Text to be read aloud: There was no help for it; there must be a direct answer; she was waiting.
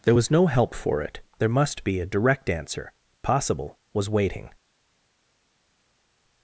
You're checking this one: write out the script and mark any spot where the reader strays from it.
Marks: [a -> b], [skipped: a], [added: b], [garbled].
There was no help for it; there must be a direct answer; [she -> possible] was waiting.